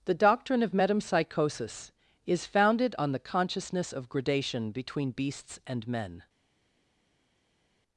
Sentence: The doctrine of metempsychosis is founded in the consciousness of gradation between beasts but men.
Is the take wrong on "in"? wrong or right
wrong